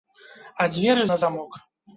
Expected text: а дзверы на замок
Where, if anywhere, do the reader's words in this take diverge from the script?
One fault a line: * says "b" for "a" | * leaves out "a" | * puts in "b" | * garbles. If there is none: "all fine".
all fine